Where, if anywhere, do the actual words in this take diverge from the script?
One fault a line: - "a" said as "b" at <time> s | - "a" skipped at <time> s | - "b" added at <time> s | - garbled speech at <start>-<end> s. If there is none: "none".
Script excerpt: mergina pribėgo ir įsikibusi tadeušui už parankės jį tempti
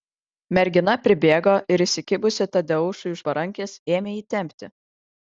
- "ėmė" added at 4.0 s